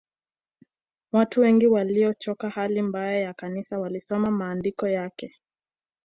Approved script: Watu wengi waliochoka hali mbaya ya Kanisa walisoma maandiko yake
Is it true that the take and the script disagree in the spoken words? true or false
false